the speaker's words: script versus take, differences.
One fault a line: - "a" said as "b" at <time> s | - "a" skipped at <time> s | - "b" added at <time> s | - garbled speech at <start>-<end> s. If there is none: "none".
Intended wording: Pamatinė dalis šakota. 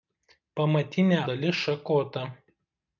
none